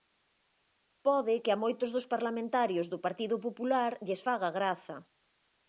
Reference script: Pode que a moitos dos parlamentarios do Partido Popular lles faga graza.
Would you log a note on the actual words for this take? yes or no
no